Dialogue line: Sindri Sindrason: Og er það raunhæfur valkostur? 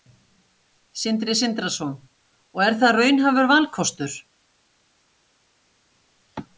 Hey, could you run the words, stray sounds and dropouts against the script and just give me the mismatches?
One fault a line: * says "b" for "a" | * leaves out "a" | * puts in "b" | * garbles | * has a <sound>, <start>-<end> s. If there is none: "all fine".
all fine